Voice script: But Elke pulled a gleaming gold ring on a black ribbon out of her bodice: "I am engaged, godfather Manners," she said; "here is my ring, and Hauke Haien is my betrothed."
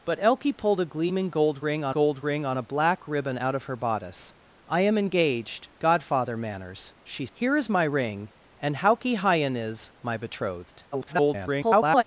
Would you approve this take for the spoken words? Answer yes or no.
no